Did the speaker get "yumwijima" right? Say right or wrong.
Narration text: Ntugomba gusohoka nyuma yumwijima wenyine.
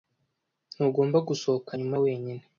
wrong